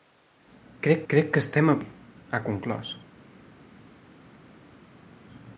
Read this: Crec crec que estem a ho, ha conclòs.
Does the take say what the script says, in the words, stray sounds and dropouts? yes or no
yes